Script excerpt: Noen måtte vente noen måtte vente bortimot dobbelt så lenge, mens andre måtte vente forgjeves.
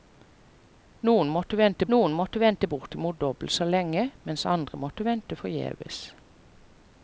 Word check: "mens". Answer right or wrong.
right